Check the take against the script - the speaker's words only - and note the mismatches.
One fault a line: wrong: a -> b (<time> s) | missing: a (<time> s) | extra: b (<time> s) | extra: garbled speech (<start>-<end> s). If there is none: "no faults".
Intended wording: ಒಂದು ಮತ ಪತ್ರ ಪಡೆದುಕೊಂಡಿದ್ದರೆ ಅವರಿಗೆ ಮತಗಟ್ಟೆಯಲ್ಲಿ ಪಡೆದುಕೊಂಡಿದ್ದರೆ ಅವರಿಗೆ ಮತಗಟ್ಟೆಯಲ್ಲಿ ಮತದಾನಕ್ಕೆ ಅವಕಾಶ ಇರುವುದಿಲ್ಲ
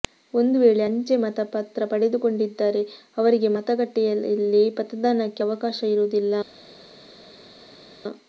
extra: ವೇಳೆ ಅಂಚೆ (0.6 s)
missing: ಪಡೆದುಕೊಂಡಿದ್ದರೆ ಅವರಿಗೆ ಮತಗಟ್ಟೆಯಲ್ಲಿ (4.6 s)